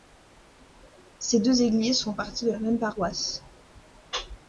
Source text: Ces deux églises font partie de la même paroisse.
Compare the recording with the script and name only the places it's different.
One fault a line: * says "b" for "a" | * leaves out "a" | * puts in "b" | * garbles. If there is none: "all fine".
all fine